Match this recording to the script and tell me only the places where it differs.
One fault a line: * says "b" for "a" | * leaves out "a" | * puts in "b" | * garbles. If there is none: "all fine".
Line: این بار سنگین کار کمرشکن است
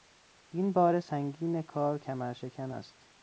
all fine